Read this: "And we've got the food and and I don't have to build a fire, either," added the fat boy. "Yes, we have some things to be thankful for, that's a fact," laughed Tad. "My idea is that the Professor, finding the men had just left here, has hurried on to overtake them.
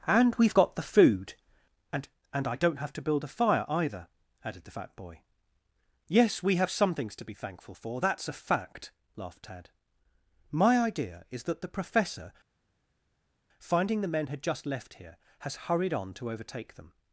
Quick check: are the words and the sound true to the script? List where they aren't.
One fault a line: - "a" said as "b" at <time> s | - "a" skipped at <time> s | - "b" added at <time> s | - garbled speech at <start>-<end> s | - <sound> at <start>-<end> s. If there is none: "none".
none